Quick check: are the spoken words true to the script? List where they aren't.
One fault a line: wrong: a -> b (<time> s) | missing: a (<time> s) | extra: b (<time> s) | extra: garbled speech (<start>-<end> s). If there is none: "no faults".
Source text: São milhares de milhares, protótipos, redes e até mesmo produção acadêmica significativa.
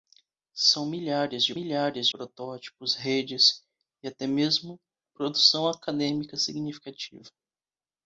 no faults